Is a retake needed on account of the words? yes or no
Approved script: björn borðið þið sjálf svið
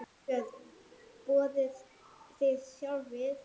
no